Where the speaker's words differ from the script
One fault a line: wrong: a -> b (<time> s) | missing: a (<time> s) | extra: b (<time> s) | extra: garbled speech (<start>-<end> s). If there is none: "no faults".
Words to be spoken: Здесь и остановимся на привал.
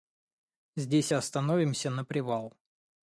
no faults